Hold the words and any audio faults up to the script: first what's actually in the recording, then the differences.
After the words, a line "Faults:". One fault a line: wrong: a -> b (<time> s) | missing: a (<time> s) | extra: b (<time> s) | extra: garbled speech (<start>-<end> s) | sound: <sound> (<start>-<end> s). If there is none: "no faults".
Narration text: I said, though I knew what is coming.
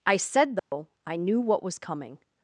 I said, though I knew what was coming.
Faults:
sound: dropout (0.6-0.7 s)
wrong: is -> was (1.6 s)